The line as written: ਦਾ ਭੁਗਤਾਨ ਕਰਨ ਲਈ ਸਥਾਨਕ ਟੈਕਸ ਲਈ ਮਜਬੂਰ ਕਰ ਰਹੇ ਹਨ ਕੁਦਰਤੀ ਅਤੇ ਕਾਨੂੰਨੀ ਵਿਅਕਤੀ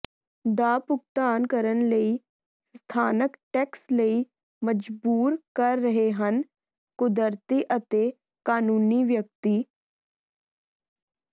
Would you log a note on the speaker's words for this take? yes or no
no